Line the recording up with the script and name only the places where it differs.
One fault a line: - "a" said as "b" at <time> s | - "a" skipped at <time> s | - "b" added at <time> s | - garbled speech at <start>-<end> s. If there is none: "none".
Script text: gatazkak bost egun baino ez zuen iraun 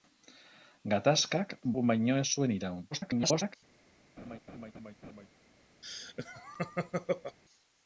- "bost" skipped at 1.5 s
- garbled speech at 2.9-3.6 s